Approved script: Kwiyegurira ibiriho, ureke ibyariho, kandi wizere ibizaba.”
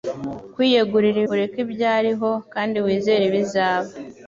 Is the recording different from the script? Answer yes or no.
yes